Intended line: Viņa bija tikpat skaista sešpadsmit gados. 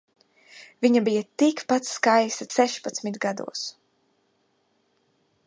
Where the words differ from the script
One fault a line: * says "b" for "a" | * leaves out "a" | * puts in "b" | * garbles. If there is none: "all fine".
all fine